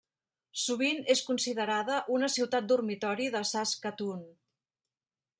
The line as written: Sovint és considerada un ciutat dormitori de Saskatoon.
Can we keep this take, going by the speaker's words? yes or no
no